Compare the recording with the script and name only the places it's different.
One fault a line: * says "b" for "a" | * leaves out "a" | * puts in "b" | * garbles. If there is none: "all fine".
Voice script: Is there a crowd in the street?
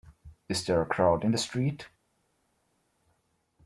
all fine